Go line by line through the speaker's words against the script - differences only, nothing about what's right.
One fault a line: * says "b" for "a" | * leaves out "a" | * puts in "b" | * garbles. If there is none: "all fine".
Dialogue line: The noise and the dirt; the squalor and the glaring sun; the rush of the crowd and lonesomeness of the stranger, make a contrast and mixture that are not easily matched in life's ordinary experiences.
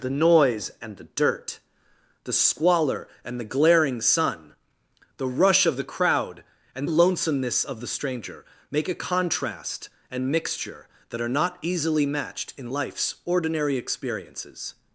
all fine